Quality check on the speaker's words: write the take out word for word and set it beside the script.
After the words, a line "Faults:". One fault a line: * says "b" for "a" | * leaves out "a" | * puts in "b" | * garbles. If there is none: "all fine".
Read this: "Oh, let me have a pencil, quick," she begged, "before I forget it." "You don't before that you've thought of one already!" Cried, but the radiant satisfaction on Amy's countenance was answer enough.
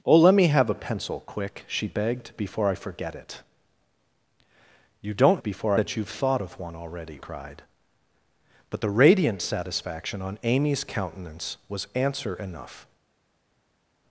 "Oh, let me have a pencil, quick," she begged, "before I forget it." "You don't before that you've thought of one already!" Cried, but the radiant satisfaction on Amy's countenance was answer enough.
Faults:
all fine